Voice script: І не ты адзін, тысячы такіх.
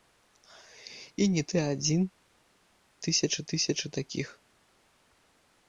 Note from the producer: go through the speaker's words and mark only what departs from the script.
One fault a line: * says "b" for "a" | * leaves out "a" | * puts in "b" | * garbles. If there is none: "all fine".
* puts in "тысячы"